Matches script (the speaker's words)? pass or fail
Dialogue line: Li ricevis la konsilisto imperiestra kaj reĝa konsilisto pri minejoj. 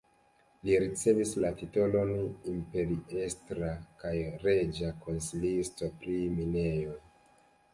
fail